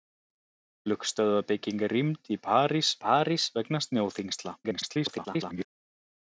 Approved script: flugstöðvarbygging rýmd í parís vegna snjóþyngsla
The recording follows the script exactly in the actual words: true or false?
false